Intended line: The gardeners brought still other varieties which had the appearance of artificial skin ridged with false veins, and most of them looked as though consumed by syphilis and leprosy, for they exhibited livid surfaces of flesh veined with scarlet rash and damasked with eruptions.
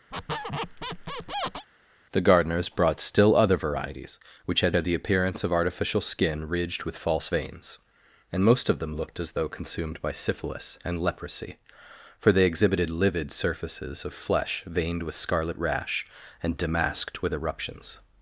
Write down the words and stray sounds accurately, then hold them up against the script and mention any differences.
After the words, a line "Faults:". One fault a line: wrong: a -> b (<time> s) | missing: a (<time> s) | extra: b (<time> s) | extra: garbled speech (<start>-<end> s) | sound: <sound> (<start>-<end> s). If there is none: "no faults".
The gardeners brought still other varieties which had had the appearance of artificial skin ridged with false veins, and most of them looked as though consumed by syphilis and leprosy, for they exhibited livid surfaces of flesh veined with scarlet rash and damasked with eruptions.
Faults:
sound: squeak (0.1-1.7 s)
extra: had (4.7 s)